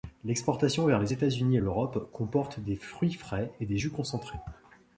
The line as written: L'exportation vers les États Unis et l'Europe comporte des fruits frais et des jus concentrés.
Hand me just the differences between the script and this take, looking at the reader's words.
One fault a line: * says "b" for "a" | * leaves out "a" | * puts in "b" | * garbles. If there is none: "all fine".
all fine